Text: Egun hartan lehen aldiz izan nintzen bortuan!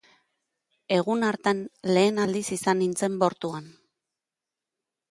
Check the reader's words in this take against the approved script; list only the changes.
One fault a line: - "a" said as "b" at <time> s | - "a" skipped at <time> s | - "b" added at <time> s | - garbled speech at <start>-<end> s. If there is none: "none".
none